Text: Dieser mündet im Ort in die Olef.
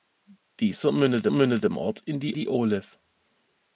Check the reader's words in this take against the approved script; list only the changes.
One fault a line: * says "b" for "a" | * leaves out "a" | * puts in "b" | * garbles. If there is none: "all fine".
* puts in "mündet"
* puts in "die"